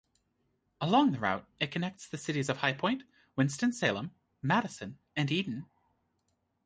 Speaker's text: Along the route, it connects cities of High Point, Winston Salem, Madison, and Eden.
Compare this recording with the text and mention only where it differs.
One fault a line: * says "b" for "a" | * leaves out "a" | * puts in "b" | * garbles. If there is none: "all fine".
* puts in "the"